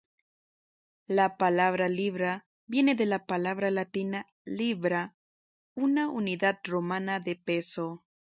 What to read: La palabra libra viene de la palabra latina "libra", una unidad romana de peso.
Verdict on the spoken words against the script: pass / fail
pass